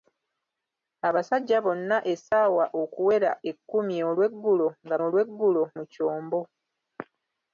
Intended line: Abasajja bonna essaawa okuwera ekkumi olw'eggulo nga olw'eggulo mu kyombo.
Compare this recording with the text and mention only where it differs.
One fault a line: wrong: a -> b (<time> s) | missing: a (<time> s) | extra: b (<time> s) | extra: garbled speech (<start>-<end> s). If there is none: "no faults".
no faults